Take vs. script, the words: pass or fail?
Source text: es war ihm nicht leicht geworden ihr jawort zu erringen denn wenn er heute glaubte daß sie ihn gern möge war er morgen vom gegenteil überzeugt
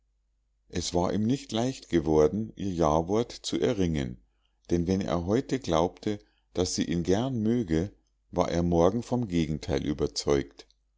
pass